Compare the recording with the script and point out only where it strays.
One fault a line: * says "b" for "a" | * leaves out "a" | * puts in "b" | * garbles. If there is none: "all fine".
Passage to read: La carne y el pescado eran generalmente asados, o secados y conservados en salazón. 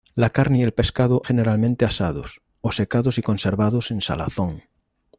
* leaves out "eran"